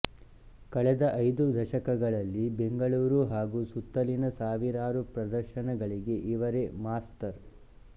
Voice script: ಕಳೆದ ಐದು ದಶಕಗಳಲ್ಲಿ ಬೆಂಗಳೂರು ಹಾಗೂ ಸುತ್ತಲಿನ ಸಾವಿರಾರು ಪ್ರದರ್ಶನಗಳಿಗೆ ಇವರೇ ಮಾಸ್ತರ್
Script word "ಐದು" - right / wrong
right